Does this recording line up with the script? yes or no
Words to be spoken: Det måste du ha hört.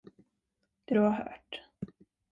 no